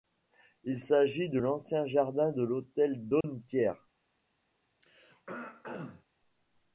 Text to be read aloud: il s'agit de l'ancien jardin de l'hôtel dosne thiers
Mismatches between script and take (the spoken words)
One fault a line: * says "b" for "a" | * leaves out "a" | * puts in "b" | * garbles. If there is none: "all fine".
all fine